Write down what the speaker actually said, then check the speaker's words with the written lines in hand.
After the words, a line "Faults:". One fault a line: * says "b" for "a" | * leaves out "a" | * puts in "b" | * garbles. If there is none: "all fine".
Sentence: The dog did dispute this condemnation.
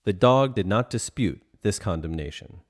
The dog did not dispute this condemnation.
Faults:
* puts in "not"